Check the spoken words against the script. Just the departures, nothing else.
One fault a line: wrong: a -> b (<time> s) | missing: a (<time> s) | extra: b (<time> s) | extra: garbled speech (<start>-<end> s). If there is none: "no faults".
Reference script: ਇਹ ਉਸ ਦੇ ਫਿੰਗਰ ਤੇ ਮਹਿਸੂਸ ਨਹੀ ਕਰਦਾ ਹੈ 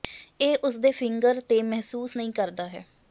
no faults